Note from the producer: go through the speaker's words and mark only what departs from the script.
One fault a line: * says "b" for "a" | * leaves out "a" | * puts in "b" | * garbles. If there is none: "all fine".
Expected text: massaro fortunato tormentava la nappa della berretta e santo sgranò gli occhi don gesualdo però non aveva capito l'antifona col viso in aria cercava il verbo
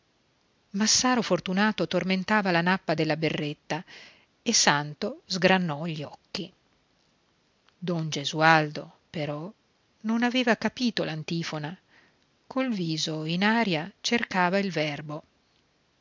all fine